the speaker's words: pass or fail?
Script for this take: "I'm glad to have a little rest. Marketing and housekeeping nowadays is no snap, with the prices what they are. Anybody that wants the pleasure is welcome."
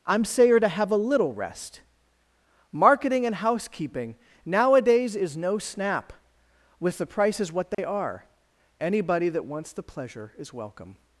fail